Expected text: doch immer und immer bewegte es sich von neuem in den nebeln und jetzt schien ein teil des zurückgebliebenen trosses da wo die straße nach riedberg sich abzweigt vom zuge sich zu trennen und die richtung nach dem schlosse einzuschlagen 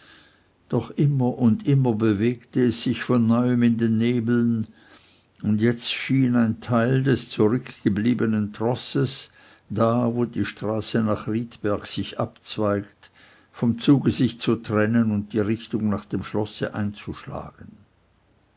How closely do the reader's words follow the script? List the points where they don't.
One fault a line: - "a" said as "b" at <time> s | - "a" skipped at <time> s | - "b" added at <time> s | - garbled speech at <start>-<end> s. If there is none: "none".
none